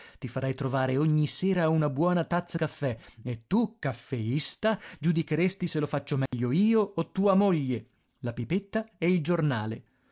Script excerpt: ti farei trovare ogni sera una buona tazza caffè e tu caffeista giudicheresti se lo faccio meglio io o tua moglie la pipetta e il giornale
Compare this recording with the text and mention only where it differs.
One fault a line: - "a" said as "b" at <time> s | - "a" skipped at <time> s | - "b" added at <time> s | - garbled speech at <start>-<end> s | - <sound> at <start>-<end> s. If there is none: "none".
- dropout at 6.3-6.3 s